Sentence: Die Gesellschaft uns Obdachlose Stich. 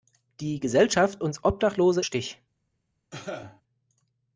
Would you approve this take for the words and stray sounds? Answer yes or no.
no